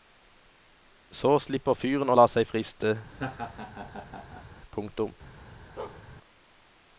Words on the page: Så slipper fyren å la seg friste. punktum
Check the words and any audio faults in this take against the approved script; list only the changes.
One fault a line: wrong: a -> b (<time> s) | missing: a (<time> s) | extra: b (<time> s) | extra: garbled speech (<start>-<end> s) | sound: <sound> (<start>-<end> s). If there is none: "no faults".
sound: laugh (3.1-4.5 s)
sound: bark (5.8-6.1 s)